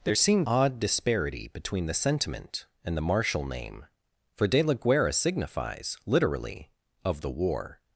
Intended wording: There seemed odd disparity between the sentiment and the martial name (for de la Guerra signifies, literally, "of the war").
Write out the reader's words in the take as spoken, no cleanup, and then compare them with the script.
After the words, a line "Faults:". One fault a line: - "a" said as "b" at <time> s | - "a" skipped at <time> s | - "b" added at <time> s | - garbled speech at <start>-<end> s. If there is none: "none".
There seemed odd disparity between the sentiment and the martial name (for de la Guerra signifies, literally, "of the war").
Faults:
none